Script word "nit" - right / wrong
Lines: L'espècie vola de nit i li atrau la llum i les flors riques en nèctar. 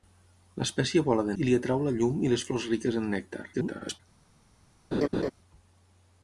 wrong